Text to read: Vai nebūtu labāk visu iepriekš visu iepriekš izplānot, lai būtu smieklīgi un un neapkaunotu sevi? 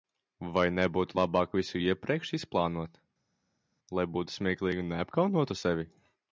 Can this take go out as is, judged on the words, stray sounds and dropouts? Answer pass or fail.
fail